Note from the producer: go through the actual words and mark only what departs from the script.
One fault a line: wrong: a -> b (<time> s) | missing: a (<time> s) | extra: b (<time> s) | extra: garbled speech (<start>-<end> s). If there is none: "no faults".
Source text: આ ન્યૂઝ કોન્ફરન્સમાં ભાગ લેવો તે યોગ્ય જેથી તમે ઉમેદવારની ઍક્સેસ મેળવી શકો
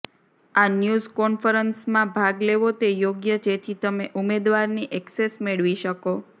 no faults